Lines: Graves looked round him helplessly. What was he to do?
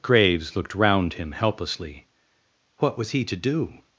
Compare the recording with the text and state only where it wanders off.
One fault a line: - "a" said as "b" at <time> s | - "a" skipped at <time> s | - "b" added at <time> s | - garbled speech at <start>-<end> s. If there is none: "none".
none